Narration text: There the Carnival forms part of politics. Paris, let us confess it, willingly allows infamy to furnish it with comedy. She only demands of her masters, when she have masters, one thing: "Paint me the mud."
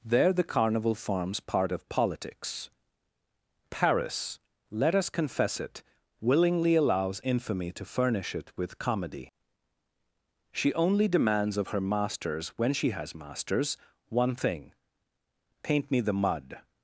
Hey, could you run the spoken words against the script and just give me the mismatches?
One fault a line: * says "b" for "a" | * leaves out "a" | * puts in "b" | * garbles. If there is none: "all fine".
* says "has" for "have"